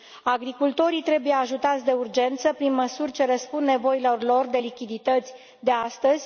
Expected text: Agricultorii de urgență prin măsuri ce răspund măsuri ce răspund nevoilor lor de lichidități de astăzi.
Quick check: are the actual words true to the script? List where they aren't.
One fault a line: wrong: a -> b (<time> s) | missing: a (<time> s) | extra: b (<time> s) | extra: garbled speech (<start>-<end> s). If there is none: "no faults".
extra: trebuie ajutați (1.0 s)
missing: măsuri ce răspund (3.6 s)